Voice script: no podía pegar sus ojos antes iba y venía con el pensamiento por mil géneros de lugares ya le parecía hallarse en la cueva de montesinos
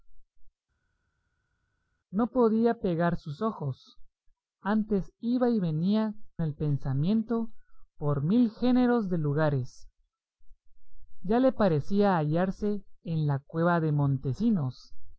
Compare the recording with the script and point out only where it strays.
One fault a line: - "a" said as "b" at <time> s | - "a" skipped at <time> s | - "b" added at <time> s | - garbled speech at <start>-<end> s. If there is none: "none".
- "con" skipped at 6.1 s